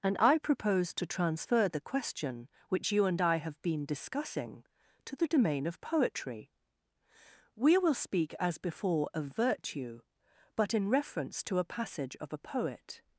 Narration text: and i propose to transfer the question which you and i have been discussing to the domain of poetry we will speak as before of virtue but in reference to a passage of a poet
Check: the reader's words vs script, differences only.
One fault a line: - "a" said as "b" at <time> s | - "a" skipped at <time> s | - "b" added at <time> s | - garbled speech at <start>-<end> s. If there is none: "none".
none